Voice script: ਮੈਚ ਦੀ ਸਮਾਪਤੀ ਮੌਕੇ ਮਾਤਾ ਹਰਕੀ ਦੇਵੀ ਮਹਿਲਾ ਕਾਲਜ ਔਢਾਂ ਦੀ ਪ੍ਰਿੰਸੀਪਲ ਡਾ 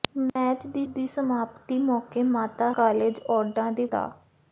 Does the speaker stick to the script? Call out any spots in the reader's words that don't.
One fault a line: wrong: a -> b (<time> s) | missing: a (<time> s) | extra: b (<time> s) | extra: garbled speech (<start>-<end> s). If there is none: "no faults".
extra: ਦੀ (0.9 s)
missing: ਹਰਕੀ ਦੇਵੀ ਮਹਿਲਾ (2.7 s)
missing: ਪ੍ਰਿੰਸੀਪਲ (3.8 s)